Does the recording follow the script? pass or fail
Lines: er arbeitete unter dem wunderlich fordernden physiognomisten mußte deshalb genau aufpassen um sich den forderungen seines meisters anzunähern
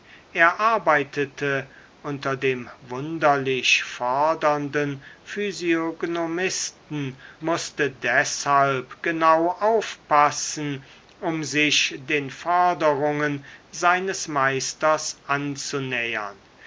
pass